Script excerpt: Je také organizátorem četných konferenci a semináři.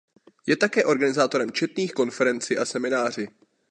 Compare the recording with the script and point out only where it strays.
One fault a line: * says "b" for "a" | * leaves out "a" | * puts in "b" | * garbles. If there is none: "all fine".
all fine